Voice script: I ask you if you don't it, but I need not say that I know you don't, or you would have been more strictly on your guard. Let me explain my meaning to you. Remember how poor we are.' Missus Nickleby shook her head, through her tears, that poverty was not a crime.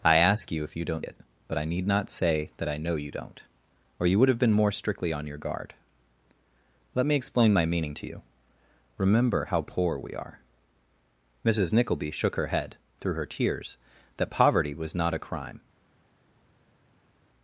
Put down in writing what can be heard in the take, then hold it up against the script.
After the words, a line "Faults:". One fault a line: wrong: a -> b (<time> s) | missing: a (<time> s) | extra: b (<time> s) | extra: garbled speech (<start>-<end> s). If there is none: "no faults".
I ask you if you don't it, but I need not say that I know you don't, or you would have been more strictly on your guard. Let me explain my meaning to you. Remember how poor we are.' Missus Nickleby shook her head, through her tears, that poverty was not a crime.
Faults:
no faults